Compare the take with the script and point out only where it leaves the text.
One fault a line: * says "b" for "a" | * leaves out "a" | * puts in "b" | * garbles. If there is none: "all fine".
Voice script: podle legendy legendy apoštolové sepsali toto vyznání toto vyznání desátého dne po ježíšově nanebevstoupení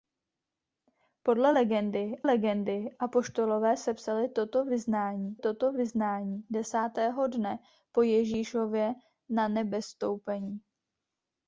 all fine